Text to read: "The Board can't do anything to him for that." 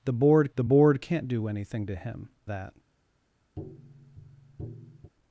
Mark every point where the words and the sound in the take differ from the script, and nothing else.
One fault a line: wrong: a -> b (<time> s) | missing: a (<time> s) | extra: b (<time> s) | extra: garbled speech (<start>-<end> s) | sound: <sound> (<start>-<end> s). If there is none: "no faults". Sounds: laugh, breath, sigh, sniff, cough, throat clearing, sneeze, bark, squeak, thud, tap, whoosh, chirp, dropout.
extra: the Board (0.5 s)
missing: for (2.3 s)
sound: tap (3.6-5.1 s)